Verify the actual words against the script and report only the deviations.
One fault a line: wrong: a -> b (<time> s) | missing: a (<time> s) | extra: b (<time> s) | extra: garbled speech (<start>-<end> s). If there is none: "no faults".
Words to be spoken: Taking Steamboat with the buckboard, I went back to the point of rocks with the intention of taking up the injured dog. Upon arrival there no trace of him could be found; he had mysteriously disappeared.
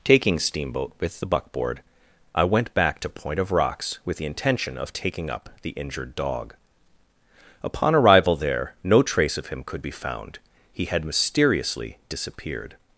missing: the (3.1 s)